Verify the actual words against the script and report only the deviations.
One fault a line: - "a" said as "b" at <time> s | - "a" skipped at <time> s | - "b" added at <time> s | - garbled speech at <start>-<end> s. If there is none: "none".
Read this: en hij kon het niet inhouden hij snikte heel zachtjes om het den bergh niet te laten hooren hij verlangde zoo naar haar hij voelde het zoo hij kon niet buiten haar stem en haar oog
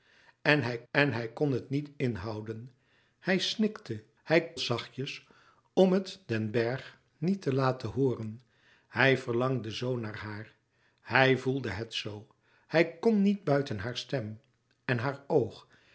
- "en hij" added at 0.9 s
- "heel" said as "hij" at 4.2 s